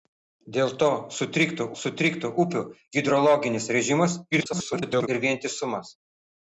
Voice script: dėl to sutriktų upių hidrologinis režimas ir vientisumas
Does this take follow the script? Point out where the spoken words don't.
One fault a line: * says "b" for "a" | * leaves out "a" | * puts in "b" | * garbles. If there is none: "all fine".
* puts in "sutriktų"
* garbles